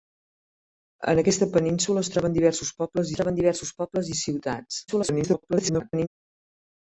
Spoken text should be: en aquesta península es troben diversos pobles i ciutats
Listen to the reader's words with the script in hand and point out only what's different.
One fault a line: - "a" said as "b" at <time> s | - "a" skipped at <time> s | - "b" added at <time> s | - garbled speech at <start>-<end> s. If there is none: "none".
- "troben diversos pobles" added at 3.2 s
- garbled speech at 4.9-6.1 s